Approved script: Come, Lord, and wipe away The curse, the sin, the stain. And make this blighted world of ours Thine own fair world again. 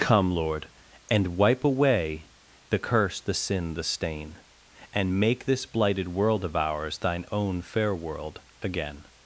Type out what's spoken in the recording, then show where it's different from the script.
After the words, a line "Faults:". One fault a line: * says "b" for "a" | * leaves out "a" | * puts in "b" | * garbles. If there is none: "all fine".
Come, Lord, and wipe away The curse, the sin, the stain. And make this blighted world of ours Thine own fair world again.
Faults:
all fine